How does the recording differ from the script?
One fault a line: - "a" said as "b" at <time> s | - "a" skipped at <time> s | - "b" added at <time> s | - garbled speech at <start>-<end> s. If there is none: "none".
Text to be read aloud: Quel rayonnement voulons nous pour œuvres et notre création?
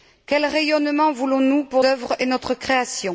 none